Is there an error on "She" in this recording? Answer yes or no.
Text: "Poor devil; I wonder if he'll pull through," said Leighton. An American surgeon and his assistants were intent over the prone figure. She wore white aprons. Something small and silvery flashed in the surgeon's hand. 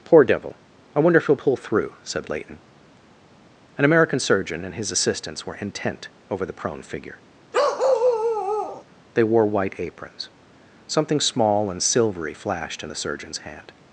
yes